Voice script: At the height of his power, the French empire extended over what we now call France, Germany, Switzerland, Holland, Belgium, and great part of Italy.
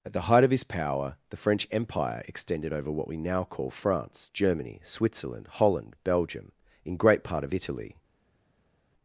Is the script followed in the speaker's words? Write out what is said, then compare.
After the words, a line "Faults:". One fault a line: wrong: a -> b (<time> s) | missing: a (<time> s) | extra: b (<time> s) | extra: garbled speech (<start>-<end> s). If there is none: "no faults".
At the height of his power, the French empire extended over what we now call France, Germany, Switzerland, Holland, Belgium, in great part of Italy.
Faults:
wrong: and -> in (6.8 s)